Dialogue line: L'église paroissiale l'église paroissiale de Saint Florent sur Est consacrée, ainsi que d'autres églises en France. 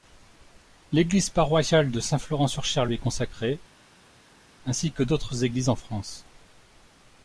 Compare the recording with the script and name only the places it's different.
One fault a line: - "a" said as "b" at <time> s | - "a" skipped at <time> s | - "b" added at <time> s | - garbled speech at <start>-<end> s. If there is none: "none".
- "l'église paroissiale" skipped at 1.9 s
- "Cher lui" added at 2.6 s